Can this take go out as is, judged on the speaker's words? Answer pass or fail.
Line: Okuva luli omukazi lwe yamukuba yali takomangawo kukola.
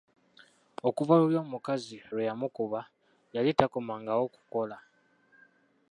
pass